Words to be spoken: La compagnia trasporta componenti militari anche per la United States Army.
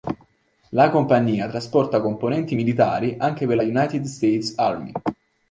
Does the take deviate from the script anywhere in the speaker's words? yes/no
no